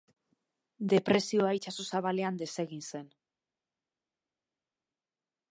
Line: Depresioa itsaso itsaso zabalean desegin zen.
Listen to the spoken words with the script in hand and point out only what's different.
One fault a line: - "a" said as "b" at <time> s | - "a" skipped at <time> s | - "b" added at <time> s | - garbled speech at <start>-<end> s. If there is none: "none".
- "itsaso" skipped at 1.9 s